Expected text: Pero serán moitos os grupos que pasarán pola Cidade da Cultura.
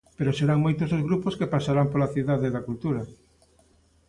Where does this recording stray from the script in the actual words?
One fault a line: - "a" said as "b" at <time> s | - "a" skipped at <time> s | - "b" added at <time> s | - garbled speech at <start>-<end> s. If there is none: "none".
none